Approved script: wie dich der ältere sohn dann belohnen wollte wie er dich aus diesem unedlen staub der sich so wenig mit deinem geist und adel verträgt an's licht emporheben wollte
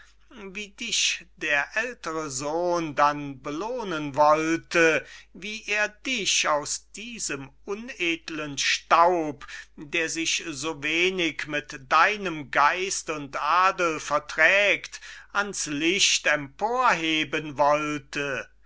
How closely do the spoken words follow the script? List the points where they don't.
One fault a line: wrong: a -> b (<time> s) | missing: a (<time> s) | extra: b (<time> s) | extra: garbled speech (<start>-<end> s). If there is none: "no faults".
no faults